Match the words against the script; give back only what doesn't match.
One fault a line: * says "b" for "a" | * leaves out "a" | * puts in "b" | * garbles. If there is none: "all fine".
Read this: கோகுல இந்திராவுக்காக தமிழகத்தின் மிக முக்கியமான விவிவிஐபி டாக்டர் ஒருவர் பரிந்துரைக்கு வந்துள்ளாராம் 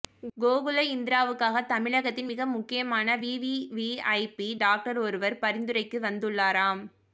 all fine